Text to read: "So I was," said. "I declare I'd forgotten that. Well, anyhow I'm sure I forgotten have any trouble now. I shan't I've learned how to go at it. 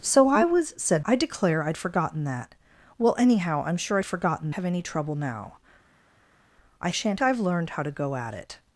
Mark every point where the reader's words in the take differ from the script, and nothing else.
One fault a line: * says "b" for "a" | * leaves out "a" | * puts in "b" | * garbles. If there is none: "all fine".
all fine